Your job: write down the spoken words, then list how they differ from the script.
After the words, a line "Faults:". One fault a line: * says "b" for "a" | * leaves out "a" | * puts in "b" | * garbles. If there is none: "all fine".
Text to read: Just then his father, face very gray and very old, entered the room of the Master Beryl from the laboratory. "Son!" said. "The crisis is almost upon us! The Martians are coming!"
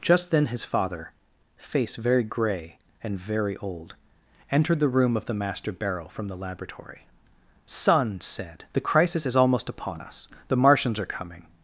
Just then his father, face very gray and very old, entered the room of the Master Beryl from the laboratory. "Son!" said. "The crisis is almost upon us! The Martians are coming!"
Faults:
all fine